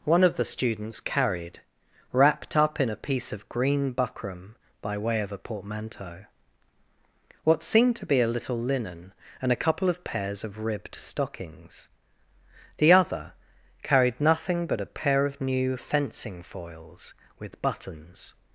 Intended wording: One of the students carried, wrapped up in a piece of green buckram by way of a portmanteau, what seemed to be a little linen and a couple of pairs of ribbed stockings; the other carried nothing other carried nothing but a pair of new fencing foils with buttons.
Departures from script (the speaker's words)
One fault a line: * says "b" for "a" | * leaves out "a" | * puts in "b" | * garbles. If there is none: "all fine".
* leaves out "other carried nothing"